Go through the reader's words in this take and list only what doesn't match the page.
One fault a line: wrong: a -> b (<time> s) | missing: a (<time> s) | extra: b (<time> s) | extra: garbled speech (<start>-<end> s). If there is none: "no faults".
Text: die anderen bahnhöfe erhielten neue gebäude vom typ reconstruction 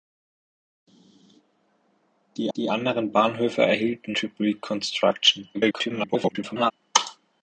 extra: die (2.6 s)
missing: neue gebäude vom (4.2 s)
extra: garbled speech (5.5-6.7 s)